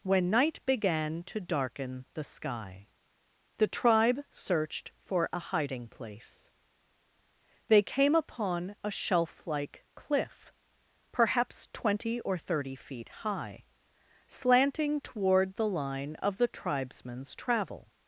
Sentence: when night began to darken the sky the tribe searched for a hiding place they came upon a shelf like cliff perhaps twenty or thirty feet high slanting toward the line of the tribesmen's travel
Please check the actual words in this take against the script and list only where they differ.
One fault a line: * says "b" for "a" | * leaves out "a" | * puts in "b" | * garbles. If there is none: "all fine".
all fine